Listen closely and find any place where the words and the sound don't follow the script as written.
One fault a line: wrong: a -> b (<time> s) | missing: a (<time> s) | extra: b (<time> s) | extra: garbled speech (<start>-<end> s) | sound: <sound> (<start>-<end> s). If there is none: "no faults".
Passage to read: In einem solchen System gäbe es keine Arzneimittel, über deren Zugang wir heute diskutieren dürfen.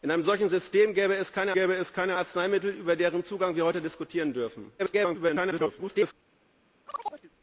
extra: gäbe es keine (1.5 s)
extra: garbled speech (4.8-6.1 s)
sound: chirp (6.9-7.3 s)